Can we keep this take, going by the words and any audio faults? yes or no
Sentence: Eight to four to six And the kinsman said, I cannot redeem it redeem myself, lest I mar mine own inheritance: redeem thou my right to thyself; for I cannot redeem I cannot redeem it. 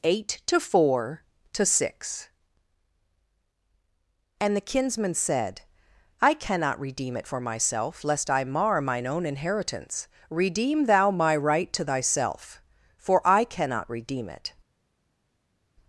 no